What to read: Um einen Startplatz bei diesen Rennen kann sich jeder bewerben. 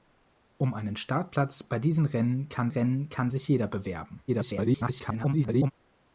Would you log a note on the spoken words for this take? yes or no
yes